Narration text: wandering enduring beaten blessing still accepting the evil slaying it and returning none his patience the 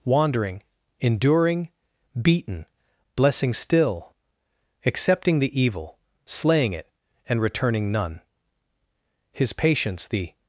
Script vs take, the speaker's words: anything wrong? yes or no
no